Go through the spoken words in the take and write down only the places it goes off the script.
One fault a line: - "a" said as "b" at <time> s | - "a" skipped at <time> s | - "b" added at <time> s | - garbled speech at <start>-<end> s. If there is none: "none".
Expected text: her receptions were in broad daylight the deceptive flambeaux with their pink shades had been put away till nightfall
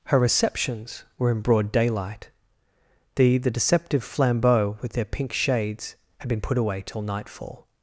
- "the" added at 3.4 s